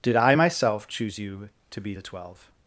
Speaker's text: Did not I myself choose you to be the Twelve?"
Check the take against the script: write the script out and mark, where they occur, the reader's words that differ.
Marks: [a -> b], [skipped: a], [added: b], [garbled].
Did [skipped: not] I myself choose you to be the Twelve?"